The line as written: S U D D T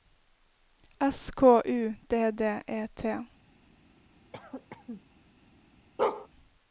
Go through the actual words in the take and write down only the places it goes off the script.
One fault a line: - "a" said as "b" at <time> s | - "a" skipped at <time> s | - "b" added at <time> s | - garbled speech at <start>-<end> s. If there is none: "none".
- "K" added at 1.3 s
- "E" added at 2.7 s